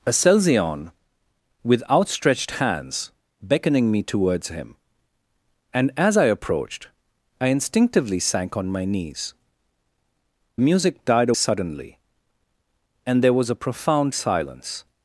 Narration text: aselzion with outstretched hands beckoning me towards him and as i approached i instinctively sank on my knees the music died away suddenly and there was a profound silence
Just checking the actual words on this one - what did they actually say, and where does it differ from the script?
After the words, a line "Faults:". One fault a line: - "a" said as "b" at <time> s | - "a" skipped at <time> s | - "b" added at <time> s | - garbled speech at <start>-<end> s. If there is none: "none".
aselzion with outstretched hands beckoning me towards him and as i approached i instinctively sank on my knees music died suddenly and there was a profound silence
Faults:
- "the" skipped at 9.3 s
- "away" skipped at 11.3 s